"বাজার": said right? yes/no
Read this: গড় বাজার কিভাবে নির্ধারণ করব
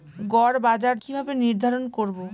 yes